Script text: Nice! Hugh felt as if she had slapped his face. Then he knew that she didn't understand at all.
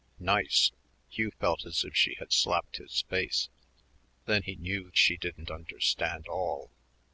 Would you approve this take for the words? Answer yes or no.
no